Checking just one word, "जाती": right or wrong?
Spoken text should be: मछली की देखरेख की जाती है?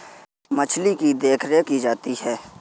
right